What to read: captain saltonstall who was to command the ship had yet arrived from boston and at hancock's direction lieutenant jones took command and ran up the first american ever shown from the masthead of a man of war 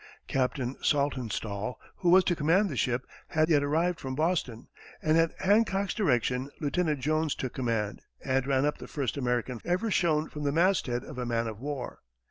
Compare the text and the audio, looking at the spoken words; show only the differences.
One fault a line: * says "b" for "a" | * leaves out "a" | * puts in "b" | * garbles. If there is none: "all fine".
all fine